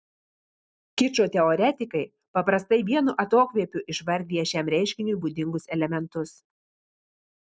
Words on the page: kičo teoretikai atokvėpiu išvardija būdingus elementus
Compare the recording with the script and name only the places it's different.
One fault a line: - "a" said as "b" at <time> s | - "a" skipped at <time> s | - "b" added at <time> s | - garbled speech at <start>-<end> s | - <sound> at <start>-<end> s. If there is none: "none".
- "paprastai vienu" added at 2.4 s
- "šiam reiškiniui" added at 4.5 s